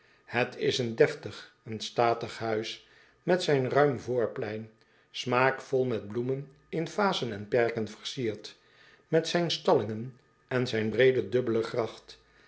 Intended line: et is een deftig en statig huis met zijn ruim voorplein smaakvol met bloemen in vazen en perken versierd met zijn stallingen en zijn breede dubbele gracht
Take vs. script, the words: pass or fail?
pass